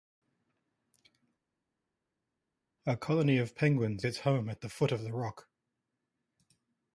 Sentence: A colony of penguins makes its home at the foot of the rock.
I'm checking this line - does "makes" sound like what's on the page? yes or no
no